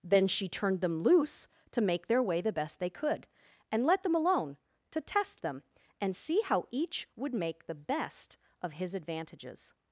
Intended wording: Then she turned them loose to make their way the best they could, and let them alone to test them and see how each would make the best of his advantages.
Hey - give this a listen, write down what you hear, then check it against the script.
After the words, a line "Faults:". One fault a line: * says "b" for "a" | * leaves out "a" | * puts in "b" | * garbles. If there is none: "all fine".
Then she turned them loose to make their way the best they could, and let them alone to test them and see how each would make the best of his advantages.
Faults:
all fine